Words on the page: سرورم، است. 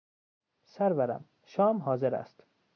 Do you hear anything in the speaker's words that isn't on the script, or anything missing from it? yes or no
yes